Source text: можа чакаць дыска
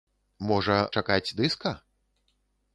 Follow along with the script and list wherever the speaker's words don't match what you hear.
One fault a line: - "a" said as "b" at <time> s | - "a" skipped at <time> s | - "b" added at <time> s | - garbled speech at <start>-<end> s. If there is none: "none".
none